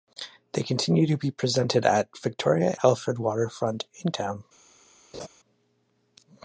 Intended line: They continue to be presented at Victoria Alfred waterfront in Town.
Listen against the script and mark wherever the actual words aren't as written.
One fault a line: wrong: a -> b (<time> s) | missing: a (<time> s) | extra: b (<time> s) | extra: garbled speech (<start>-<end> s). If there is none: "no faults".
no faults